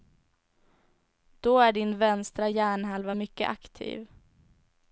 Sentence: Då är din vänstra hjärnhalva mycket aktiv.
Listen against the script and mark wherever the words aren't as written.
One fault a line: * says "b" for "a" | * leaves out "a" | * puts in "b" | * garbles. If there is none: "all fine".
all fine